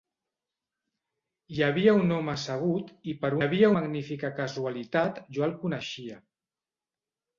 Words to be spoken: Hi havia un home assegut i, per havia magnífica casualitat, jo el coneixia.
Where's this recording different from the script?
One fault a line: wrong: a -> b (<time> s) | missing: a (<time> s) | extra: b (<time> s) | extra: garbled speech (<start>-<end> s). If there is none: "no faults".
no faults